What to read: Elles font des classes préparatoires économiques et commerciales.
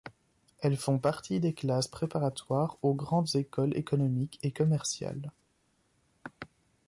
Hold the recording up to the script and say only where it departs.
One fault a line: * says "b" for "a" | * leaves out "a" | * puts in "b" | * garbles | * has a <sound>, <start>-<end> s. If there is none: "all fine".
* puts in "partie"
* puts in "aux grandes écoles"